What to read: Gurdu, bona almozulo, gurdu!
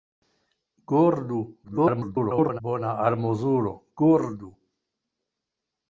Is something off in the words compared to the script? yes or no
yes